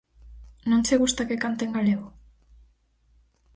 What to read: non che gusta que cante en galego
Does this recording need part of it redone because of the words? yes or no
no